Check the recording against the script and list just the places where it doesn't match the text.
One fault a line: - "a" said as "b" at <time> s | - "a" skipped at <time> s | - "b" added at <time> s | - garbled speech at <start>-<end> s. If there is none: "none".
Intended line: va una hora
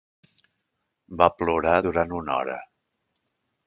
- "plorar durant" added at 1.4 s